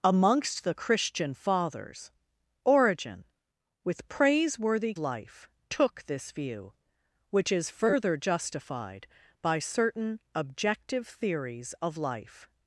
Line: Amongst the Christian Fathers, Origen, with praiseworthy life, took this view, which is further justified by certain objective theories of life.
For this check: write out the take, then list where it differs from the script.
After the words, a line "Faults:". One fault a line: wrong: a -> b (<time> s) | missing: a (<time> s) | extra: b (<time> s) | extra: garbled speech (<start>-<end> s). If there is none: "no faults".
Amongst the Christian Fathers, Origen, with praiseworthy life, took this view, which is further justified by certain objective theories of life.
Faults:
no faults